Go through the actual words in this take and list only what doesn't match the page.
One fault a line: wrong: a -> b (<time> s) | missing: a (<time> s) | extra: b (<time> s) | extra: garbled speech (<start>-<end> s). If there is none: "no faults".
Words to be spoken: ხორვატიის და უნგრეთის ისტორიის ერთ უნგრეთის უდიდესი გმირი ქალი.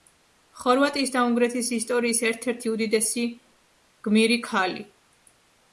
wrong: უნგრეთის -> ერთი (2.5 s)